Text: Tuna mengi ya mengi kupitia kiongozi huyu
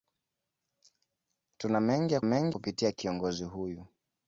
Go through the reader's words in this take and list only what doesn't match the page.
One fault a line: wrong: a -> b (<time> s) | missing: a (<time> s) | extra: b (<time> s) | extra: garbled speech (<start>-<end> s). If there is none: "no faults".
no faults